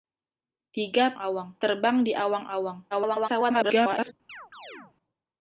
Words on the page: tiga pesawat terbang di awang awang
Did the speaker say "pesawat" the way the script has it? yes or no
no